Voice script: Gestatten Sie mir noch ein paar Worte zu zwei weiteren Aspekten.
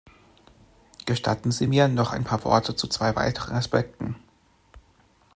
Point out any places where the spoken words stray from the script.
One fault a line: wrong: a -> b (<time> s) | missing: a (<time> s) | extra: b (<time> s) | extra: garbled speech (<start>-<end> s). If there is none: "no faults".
no faults